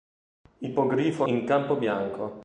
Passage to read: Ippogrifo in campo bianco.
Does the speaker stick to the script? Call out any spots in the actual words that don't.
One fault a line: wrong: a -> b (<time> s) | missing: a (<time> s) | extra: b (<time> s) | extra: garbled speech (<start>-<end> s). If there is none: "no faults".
no faults